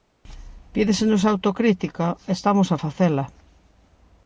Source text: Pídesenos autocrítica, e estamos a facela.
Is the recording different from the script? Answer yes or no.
no